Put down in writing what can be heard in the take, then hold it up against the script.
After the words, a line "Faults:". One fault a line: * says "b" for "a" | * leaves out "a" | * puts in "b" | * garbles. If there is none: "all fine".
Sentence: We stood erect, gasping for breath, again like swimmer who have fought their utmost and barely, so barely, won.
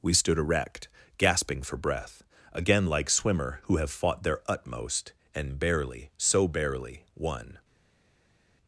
We stood erect, gasping for breath, again like swimmer who have fought their utmost and barely, so barely, won.
Faults:
all fine